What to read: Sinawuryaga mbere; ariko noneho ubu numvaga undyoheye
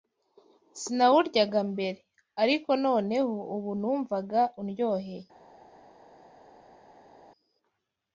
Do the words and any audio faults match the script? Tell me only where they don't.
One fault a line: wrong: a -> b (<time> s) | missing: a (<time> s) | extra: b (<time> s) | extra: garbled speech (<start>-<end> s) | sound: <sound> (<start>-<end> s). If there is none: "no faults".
no faults